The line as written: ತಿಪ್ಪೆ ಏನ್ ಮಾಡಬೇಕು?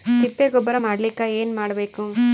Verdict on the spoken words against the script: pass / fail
fail